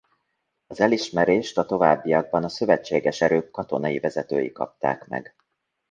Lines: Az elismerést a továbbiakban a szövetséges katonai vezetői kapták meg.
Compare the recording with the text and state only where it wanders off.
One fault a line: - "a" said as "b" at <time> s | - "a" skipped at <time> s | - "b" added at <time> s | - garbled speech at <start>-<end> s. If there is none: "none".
- "erők" added at 3.2 s